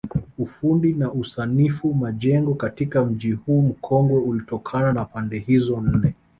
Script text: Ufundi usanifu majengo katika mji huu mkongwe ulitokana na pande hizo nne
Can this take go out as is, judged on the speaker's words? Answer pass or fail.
fail